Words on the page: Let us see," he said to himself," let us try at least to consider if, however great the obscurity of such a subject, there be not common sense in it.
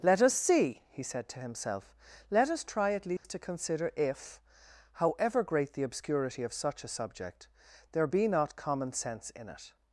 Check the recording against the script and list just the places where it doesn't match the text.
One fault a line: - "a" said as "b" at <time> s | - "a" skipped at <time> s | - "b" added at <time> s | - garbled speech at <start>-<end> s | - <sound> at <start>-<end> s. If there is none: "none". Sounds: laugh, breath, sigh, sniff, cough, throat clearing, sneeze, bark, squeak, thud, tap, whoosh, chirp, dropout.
- dropout at 3.2-3.2 s